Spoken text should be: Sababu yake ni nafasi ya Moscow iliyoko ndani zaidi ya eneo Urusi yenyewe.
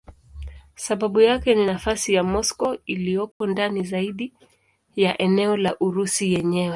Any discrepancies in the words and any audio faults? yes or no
yes